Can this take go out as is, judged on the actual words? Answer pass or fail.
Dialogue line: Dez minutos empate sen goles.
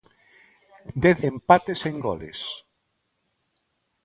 fail